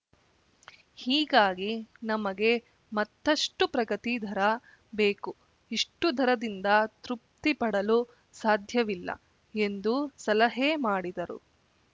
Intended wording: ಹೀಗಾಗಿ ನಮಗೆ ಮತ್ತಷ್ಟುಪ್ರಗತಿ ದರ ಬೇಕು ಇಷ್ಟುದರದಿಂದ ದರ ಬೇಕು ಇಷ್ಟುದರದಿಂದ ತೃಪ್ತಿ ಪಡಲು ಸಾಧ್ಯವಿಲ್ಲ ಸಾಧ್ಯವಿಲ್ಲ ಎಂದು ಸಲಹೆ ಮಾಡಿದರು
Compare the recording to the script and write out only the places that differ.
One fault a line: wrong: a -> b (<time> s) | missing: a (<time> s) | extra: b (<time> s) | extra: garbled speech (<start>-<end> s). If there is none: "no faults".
missing: ದರ ಬೇಕು ಇಷ್ಟುದರದಿಂದ (6.7 s)
missing: ಸಾಧ್ಯವಿಲ್ಲ (9.1 s)